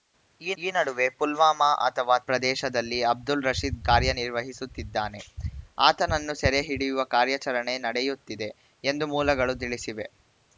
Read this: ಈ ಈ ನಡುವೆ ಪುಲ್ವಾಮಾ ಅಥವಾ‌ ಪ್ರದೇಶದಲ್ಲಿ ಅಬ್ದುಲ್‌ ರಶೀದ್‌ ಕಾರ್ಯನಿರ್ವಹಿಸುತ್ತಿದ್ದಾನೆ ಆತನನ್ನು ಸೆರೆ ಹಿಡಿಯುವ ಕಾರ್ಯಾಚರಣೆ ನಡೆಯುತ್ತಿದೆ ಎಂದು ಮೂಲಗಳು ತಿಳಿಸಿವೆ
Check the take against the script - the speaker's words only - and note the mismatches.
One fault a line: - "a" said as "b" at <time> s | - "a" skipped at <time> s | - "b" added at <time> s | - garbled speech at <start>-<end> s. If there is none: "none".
none